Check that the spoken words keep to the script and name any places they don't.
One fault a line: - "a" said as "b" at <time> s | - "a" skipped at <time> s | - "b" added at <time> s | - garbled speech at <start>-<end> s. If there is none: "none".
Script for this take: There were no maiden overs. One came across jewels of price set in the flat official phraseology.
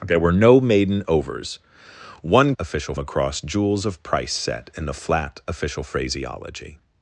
- "came" said as "official" at 2.6 s